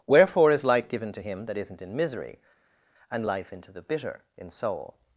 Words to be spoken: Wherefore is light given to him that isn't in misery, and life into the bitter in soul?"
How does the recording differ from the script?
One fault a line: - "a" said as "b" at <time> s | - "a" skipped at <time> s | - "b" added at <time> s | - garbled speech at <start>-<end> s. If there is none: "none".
none